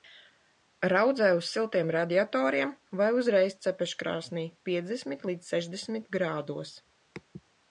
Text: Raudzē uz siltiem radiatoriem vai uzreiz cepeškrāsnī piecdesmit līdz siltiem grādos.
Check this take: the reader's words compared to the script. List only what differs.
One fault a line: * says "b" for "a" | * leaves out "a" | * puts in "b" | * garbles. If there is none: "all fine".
* says "sešdesmit" for "siltiem"